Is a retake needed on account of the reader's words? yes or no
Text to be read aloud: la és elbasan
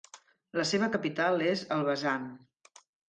yes